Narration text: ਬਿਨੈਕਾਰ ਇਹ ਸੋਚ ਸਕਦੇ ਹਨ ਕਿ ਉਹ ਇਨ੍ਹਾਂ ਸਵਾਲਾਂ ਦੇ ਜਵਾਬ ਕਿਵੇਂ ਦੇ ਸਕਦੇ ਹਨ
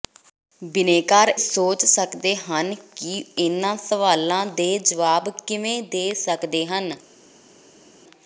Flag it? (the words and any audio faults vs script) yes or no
yes